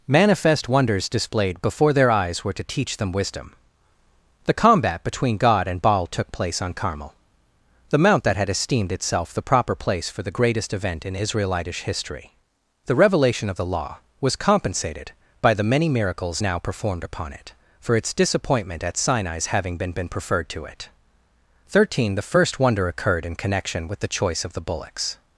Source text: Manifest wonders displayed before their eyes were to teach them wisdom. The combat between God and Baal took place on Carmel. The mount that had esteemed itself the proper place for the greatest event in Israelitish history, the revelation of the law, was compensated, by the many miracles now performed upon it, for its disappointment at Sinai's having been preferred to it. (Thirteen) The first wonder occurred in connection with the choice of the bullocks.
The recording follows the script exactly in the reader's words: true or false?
false